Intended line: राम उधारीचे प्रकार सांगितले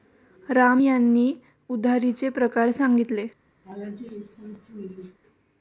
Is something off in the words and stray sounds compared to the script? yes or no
yes